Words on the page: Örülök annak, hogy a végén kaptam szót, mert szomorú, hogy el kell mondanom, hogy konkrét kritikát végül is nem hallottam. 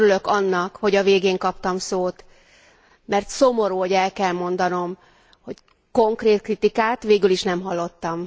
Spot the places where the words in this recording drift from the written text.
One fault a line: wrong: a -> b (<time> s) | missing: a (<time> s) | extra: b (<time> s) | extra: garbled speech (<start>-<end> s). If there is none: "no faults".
no faults